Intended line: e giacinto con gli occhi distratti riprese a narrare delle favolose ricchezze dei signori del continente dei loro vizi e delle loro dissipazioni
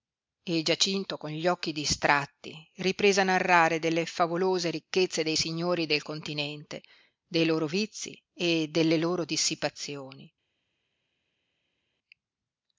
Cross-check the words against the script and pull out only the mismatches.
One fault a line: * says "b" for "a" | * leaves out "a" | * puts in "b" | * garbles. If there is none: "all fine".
all fine